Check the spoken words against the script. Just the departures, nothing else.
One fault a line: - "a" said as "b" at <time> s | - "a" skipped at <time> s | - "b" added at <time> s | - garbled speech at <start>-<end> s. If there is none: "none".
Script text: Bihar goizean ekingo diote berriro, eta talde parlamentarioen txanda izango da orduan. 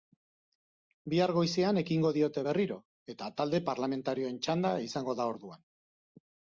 none